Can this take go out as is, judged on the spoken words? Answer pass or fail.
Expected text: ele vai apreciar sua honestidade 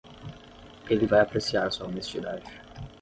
pass